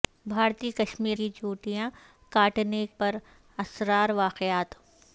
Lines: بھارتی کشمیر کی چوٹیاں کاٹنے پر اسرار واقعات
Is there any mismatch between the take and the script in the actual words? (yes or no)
no